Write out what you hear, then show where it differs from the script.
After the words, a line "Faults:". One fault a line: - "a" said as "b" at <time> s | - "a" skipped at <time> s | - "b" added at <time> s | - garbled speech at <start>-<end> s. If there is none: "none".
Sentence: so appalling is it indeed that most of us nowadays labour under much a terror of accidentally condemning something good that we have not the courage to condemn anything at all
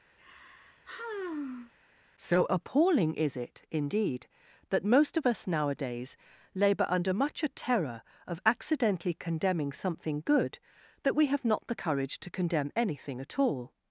so appalling is it indeed that most of us nowadays labour under much a terror of accidentally condemning something good that we have not the courage to condemn anything at all
Faults:
none